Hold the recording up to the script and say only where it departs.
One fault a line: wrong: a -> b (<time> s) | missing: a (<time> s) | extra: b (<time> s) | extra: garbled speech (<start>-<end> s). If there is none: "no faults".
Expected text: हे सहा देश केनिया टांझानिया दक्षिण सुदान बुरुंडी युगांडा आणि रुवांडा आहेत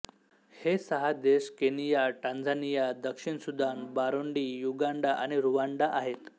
no faults